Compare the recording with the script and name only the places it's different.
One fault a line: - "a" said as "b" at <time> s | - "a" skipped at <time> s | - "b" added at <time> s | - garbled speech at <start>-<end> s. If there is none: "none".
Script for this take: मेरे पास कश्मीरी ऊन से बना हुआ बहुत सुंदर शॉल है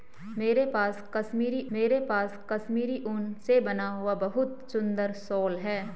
- "मेरे पास कश्मीरी" added at 1.7 s